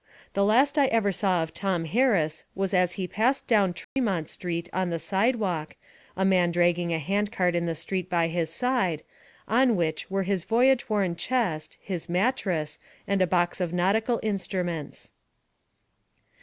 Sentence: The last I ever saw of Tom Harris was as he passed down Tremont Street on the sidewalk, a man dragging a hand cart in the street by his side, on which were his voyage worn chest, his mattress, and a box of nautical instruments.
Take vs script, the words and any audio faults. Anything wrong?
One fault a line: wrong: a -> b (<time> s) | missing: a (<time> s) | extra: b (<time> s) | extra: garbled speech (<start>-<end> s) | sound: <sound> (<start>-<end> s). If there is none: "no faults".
sound: dropout (3.8-4.0 s)